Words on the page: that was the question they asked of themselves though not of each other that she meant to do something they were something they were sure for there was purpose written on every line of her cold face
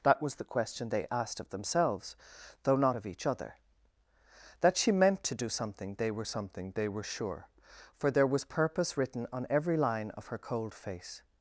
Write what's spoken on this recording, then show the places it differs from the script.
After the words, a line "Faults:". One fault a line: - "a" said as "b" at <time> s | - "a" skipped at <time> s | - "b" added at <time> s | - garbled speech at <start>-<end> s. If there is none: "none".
that was the question they asked of themselves though not of each other that she meant to do something they were something they were sure for there was purpose written on every line of her cold face
Faults:
none